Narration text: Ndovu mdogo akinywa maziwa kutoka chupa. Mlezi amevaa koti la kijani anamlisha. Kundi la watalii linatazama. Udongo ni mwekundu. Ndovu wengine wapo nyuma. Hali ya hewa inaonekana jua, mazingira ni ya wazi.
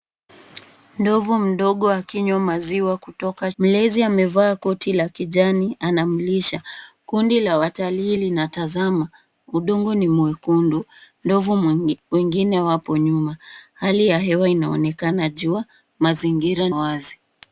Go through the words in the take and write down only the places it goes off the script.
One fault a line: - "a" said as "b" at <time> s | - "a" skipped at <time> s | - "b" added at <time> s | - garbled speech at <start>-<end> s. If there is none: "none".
- "chupa" skipped at 3.5 s
- "ni ya" skipped at 16.7 s